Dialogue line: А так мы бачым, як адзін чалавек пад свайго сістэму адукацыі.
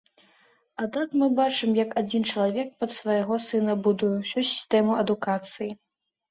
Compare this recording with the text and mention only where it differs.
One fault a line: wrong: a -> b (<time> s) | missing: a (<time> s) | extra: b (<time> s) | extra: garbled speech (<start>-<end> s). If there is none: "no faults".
extra: сына будуе ўсю (3.5 s)